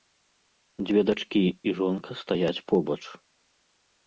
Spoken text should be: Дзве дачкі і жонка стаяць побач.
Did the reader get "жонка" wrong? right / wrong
right